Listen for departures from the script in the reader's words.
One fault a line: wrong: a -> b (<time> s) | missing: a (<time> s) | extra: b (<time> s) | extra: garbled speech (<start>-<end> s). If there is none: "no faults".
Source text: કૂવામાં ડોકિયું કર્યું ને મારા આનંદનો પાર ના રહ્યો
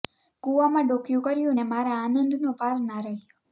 no faults